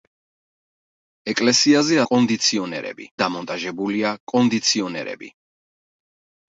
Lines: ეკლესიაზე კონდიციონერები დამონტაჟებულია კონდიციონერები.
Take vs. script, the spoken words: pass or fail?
pass